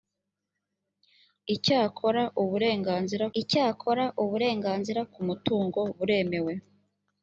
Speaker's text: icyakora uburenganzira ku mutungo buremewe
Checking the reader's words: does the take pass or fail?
fail